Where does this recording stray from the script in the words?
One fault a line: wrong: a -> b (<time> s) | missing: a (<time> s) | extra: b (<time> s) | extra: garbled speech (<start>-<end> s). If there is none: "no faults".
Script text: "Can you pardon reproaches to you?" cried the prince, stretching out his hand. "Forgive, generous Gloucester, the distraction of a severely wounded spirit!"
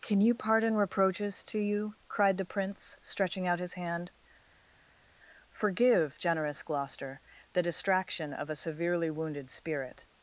no faults